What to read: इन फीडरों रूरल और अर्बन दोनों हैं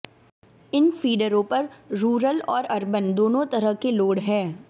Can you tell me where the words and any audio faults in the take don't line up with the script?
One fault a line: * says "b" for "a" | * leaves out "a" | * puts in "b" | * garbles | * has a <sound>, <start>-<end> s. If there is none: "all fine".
* puts in "पर"
* puts in "तरह के लोड"